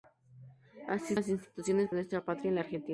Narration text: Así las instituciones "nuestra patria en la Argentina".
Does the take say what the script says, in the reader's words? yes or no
yes